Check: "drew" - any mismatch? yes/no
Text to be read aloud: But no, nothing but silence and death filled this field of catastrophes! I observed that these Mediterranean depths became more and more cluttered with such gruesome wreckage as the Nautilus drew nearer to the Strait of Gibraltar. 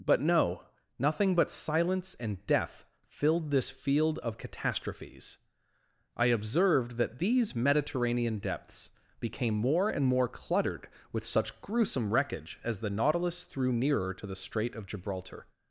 yes